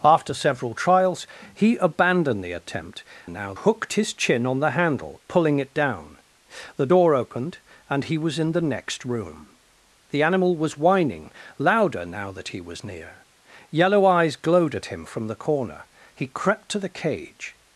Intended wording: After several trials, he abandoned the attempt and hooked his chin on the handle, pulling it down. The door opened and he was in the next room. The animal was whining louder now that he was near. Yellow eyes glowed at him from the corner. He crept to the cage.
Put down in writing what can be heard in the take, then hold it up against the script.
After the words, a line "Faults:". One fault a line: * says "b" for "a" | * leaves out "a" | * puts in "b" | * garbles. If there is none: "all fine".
After several trials, he abandoned the attempt now hooked his chin on the handle, pulling it down. The door opened and he was in the next room. The animal was whining louder now that he was near. Yellow eyes glowed at him from the corner. He crept to the cage.
Faults:
* says "now" for "and"